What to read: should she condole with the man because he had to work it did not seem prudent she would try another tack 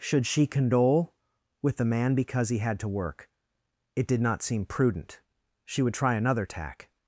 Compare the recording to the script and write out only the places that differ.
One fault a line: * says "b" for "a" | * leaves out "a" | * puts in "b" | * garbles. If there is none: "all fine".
all fine